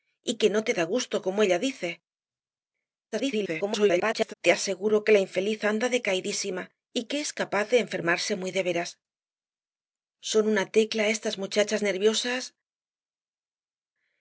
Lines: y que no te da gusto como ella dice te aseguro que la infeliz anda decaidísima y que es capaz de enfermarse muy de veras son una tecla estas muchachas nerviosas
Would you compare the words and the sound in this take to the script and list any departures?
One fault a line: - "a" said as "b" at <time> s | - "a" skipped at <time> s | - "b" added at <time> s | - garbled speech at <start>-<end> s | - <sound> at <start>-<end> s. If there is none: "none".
- garbled speech at 3.1-4.3 s